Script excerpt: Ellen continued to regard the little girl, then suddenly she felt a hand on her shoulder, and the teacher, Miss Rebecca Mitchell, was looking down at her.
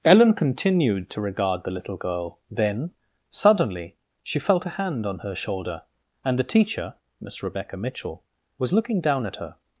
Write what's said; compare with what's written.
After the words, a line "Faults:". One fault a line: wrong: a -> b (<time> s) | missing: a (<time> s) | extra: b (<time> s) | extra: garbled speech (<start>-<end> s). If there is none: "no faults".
Ellen continued to regard the little girl, then suddenly she felt a hand on her shoulder, and the teacher, Miss Rebecca Mitchell, was looking down at her.
Faults:
no faults